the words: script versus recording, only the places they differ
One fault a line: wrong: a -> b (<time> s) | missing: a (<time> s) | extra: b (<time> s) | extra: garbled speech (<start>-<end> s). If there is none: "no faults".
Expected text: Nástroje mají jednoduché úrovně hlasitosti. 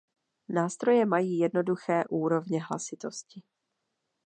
no faults